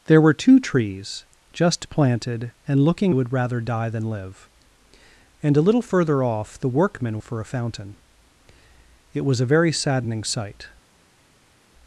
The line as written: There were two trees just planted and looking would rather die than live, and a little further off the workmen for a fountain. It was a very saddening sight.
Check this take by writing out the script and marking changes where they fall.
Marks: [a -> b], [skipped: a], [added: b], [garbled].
There were two trees just planted and looking would rather die than live, and a little further off the workmen for a fountain. It was a very saddening sight.